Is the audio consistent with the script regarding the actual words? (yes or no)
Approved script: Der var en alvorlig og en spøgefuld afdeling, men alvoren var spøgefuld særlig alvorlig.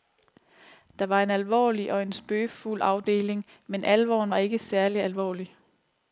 no